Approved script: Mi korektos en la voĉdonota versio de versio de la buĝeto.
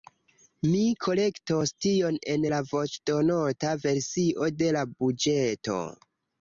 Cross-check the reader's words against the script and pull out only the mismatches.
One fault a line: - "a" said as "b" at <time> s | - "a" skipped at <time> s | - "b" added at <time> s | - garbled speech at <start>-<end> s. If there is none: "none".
- "tion" added at 1.9 s
- "versio de" skipped at 4.7 s